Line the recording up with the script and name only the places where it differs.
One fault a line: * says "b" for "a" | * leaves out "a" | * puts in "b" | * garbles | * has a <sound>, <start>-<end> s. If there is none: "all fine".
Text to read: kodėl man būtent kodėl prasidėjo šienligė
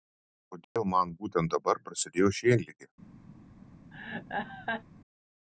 * has a dropout, 0.6-0.8 s
* says "dabar" for "kodėl"
* has a laugh, 3.9-4.8 s